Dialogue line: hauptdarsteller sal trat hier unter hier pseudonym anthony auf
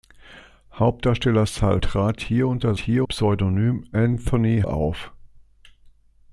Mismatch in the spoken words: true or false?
false